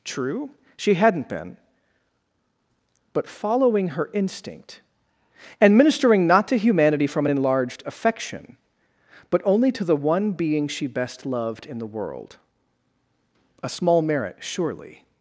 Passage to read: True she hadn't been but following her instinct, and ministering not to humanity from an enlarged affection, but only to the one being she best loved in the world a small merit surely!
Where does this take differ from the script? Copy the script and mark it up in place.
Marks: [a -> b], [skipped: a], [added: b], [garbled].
True she hadn't been but following her instinct, and ministering not to humanity from an enlarged affection, but only to the one being she best loved in the world a small merit surely!